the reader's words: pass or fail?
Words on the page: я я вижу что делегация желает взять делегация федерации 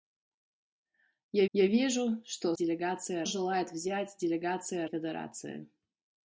pass